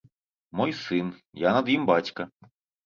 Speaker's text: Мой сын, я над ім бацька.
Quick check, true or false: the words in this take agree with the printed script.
true